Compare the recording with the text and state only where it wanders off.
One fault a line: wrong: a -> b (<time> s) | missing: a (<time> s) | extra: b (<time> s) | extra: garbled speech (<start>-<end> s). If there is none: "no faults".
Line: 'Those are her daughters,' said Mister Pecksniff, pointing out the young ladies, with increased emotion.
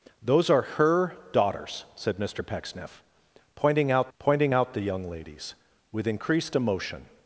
extra: pointing out (4.2 s)